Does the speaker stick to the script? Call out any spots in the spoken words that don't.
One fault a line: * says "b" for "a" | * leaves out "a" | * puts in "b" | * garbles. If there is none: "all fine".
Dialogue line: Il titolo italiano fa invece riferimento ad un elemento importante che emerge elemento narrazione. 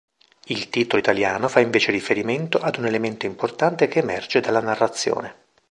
* says "dalla" for "elemento"